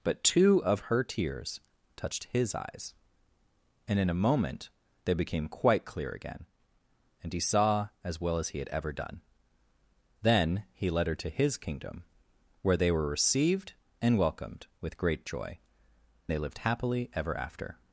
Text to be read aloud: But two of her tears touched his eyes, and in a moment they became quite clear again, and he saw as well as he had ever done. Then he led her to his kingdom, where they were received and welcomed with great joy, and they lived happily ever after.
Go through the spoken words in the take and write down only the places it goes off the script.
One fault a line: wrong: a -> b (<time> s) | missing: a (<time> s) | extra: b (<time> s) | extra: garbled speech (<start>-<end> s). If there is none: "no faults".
missing: and (15.6 s)